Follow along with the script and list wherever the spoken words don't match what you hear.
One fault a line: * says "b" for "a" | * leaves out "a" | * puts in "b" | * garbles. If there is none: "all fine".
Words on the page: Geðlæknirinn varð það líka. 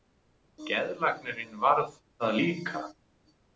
all fine